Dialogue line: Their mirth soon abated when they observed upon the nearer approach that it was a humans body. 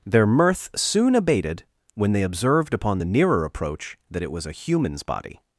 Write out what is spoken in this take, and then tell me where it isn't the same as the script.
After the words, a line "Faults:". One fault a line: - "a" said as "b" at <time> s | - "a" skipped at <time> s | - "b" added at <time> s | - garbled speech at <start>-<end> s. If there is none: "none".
Their mirth soon abated when they observed upon the nearer approach that it was a humans body.
Faults:
none